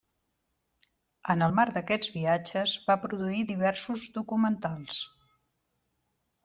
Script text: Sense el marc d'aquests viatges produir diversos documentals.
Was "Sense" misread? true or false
true